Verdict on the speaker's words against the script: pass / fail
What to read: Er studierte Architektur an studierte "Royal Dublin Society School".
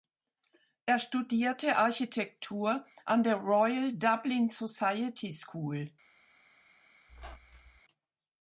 fail